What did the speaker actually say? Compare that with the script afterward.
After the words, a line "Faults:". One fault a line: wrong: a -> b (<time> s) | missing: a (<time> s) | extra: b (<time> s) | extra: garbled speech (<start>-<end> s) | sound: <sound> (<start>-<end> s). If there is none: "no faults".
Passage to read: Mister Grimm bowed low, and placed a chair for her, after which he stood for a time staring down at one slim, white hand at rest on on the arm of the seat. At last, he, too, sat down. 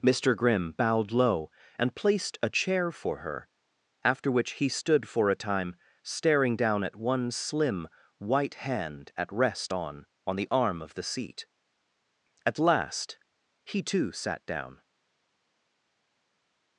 Mister Grimm bowed low, and placed a chair for her, after which he stood for a time staring down at one slim, white hand at rest on on the arm of the seat. At last, he, too, sat down.
Faults:
no faults